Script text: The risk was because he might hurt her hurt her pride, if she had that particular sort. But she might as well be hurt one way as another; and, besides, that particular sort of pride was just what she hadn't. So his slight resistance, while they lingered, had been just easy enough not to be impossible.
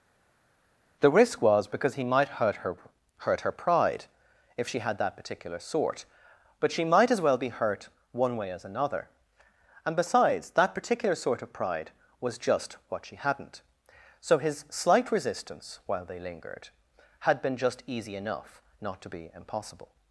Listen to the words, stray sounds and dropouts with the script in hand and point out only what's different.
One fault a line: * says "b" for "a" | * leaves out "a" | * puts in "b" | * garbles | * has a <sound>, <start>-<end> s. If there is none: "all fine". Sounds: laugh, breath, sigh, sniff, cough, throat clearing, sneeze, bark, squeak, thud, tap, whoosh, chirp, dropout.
all fine